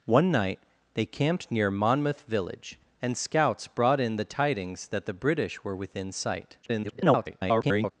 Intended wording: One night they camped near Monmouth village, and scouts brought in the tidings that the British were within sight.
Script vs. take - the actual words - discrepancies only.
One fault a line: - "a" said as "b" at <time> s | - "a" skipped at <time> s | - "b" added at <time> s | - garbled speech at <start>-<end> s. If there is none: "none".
- garbled speech at 6.6-7.9 s